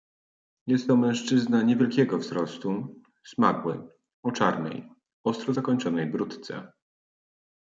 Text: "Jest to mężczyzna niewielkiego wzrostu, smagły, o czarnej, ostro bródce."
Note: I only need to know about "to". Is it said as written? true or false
true